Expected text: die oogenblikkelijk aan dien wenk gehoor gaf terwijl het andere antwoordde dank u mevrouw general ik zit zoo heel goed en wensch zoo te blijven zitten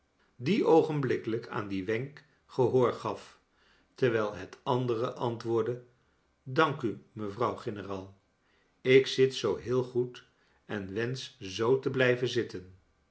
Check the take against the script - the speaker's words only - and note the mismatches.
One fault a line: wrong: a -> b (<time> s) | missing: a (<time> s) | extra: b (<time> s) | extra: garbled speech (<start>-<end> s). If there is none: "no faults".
no faults